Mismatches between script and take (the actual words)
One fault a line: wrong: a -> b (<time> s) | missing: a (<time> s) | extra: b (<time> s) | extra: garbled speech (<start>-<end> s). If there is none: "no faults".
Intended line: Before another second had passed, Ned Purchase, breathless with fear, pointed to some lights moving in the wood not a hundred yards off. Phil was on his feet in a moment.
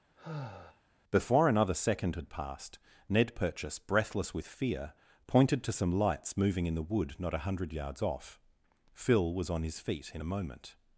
no faults